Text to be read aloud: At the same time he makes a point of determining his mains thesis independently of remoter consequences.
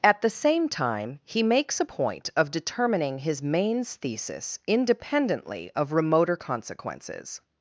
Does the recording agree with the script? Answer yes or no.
yes